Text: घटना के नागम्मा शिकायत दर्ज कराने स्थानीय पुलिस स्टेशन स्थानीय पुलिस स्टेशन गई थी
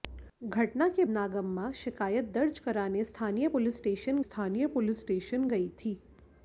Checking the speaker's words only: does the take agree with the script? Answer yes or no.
yes